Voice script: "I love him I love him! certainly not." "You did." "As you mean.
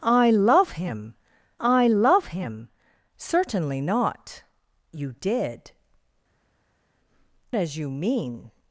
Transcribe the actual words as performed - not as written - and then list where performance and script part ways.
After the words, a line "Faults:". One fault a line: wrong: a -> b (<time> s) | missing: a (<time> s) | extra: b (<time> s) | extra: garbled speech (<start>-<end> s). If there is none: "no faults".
"I love him I love him! certainly not." "You did." "As you mean.
Faults:
no faults